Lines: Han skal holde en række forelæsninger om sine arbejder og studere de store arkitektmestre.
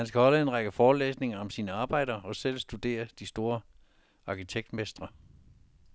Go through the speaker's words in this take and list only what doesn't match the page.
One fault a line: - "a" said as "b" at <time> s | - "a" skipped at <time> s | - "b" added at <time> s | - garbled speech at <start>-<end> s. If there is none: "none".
- "selv" added at 2.3 s